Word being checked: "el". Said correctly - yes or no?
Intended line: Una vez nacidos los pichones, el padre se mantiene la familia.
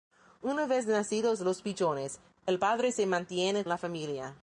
yes